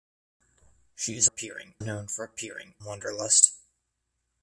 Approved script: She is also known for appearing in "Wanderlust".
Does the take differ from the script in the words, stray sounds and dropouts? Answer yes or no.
yes